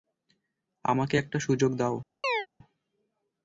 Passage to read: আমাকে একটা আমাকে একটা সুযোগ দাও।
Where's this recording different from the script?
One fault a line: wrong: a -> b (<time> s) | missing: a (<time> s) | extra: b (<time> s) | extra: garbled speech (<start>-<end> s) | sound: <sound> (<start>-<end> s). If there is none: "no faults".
missing: আমাকে একটা (1.4 s)
sound: chirp (2.2-2.5 s)